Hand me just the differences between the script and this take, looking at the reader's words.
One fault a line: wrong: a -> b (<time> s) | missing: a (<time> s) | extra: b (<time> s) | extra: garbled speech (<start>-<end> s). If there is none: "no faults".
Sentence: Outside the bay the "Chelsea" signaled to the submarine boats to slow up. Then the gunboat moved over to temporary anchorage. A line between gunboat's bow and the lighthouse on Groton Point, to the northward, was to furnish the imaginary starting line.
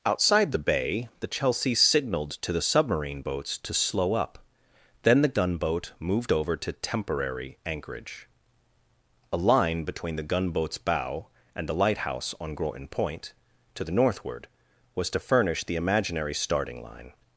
extra: the (10.2 s)